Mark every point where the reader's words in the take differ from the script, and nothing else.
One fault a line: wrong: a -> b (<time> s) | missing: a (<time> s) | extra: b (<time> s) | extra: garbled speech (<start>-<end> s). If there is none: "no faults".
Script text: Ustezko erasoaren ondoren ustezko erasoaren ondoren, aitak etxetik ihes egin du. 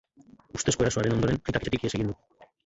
missing: ustezko erasoaren ondoren (1.4 s)